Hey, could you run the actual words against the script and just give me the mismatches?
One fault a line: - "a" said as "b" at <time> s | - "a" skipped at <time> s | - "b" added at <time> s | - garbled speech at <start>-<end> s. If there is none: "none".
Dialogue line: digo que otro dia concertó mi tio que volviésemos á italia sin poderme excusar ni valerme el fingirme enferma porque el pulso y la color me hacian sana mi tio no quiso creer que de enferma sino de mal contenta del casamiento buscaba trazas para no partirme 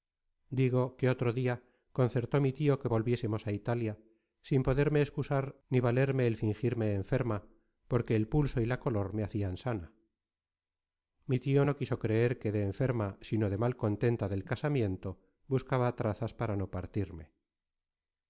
none